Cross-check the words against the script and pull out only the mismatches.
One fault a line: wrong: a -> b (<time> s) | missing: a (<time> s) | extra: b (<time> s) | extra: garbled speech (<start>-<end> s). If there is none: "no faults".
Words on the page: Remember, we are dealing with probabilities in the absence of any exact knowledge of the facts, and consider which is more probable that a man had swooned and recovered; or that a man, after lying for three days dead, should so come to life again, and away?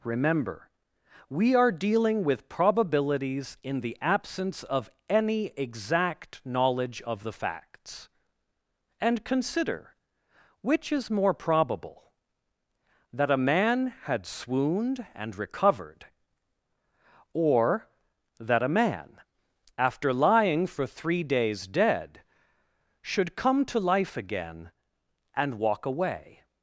missing: so (23.3 s)
extra: walk (25.5 s)